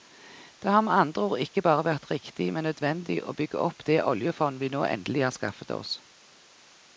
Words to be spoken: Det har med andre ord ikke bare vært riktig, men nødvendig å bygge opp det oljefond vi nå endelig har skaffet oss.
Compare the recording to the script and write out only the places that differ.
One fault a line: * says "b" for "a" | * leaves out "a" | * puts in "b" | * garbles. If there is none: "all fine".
all fine